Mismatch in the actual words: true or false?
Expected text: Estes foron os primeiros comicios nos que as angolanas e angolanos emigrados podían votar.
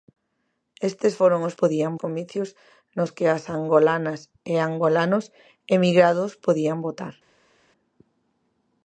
true